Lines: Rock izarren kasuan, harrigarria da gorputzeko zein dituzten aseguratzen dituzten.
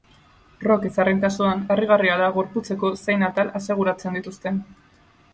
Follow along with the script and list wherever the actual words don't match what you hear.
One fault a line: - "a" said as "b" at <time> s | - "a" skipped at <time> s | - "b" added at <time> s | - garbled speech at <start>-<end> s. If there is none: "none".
- "dituzten" said as "atal" at 3.3 s